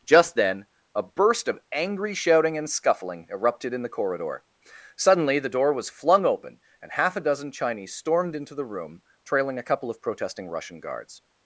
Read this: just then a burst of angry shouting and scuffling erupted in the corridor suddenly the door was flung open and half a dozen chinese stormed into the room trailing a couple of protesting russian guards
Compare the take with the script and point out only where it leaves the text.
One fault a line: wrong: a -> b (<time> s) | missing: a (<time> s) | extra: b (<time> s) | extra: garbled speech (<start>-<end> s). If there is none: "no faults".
no faults